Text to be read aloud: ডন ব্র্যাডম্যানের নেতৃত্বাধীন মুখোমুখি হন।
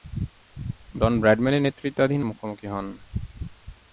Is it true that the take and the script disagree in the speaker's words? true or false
false